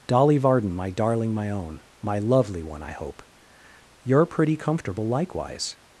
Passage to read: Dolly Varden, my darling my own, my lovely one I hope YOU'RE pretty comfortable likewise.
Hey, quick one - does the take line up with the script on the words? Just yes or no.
yes